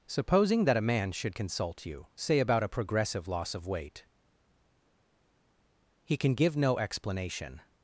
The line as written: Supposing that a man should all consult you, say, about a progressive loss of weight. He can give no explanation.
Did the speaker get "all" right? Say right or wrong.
wrong